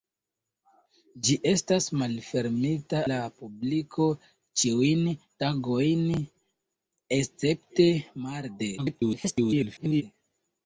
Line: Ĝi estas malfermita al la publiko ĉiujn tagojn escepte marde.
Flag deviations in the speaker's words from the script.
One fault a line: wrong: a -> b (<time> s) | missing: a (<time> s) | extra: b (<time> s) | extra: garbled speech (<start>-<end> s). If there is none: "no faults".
missing: al (3.0 s)
extra: garbled speech (8.8-10.0 s)